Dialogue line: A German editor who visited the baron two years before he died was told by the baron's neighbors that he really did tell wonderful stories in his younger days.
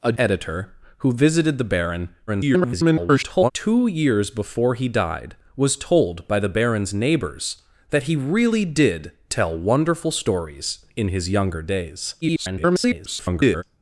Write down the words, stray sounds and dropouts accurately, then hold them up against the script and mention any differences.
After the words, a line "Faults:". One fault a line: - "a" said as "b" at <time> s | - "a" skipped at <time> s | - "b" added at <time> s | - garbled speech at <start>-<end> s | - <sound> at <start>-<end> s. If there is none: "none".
A Editor who visited the baron [garbled] two years before he died was told by the baron's neighbors that he really did tell wonderful stories in his younger days. [garbled]
Faults:
- "German" skipped at 0.1 s
- garbled speech at 2.3-3.5 s
- garbled speech at 12.2-13.6 s